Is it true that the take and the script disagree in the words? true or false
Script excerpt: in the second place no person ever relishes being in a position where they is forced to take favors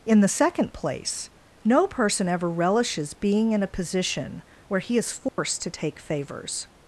true